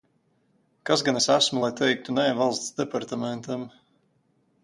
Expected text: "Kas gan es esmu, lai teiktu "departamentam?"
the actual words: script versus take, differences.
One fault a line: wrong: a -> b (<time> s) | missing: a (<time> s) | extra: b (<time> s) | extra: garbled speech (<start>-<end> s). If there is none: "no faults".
extra: nē Valsts (2.2 s)